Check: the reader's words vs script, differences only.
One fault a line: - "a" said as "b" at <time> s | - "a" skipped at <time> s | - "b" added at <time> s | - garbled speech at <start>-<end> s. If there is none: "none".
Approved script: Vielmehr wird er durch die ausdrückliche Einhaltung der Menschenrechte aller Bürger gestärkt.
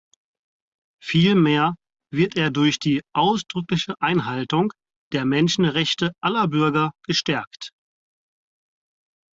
none